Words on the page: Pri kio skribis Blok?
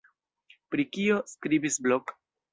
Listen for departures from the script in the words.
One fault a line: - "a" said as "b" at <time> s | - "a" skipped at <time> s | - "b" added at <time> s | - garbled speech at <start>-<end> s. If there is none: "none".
none